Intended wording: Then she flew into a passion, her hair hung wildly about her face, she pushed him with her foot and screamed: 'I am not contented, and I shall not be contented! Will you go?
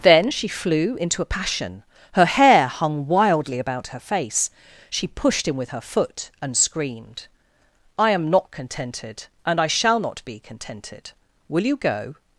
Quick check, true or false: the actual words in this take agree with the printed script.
true